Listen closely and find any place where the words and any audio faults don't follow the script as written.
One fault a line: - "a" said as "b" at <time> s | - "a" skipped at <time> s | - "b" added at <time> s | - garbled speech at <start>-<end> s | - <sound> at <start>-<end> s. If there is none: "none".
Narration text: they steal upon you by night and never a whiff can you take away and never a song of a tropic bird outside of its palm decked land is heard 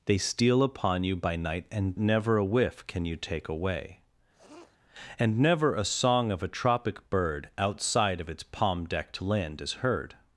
- sniff at 4.3-4.8 s